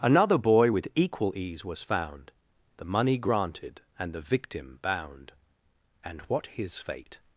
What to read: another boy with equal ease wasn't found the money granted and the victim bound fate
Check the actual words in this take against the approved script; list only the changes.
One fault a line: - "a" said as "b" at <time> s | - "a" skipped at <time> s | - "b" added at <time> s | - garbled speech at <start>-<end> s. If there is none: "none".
- "wasn't" said as "was" at 1.6 s
- "and what his" added at 6.0 s